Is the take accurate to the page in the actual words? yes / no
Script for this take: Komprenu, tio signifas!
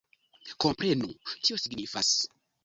yes